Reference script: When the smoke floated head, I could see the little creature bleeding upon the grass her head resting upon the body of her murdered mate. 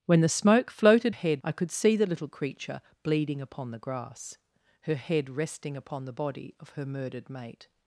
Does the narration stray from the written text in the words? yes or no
no